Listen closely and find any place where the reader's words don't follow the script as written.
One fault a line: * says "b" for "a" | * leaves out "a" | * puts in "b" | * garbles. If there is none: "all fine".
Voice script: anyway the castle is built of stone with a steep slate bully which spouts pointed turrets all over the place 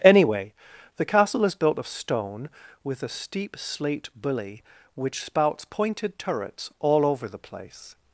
all fine